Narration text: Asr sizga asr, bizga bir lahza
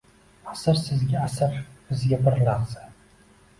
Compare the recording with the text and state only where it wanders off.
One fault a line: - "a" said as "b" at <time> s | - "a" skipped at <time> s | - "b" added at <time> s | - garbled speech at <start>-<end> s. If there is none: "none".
none